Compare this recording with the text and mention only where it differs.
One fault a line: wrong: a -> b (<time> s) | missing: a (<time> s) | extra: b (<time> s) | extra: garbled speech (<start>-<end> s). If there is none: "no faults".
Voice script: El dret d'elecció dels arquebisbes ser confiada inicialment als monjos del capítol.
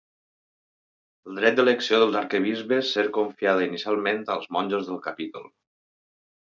no faults